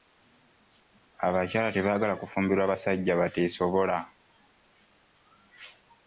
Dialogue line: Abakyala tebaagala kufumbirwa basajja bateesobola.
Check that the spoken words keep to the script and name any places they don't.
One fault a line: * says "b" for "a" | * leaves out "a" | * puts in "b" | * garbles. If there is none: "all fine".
all fine